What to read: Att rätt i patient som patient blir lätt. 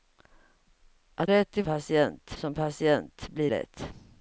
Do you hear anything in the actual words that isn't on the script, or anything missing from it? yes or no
no